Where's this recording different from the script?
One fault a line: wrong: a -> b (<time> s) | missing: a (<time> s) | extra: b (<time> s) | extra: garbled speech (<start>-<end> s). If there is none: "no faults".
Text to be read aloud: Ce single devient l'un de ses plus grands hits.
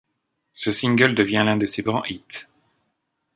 missing: plus (1.8 s)